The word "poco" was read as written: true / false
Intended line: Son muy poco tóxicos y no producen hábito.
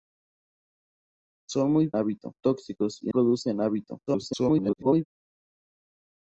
false